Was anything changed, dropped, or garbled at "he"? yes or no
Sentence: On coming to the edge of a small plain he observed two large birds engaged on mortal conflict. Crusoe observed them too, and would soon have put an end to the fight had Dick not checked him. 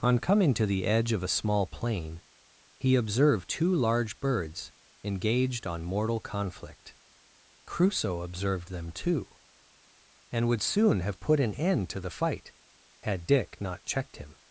no